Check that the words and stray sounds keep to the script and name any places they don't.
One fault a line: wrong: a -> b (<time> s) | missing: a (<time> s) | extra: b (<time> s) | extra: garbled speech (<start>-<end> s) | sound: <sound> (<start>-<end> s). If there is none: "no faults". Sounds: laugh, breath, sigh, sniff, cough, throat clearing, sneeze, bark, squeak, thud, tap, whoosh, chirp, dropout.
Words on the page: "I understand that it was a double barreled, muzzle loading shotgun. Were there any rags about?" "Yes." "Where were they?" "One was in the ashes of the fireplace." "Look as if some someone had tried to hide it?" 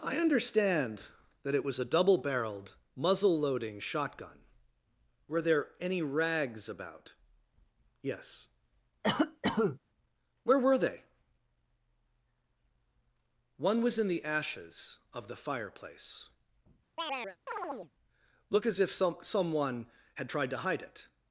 sound: cough (9.0-9.8 s)
sound: chirp (17.0-17.9 s)